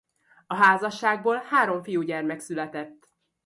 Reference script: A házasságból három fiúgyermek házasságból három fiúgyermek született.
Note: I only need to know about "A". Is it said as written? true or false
true